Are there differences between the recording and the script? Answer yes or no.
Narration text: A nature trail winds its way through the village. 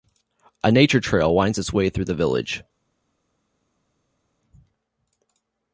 no